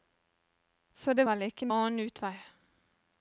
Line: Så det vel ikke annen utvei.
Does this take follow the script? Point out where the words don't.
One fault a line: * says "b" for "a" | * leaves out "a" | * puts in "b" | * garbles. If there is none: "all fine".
all fine